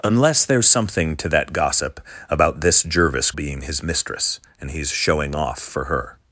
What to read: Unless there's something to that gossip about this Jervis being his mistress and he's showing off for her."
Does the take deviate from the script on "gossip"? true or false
false